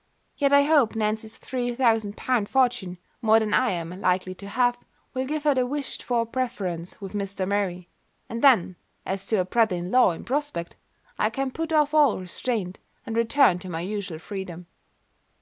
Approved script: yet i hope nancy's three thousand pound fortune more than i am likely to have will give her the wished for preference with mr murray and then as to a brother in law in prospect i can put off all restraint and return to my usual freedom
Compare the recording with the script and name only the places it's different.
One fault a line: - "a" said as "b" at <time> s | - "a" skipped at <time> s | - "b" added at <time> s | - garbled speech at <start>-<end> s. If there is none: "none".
none